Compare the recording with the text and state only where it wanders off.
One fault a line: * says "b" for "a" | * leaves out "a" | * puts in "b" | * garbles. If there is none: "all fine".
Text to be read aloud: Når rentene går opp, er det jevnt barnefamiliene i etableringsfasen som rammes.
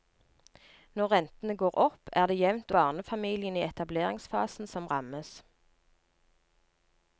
all fine